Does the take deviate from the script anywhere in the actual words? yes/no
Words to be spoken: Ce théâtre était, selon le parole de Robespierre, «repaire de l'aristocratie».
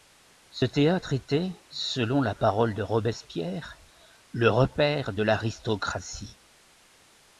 yes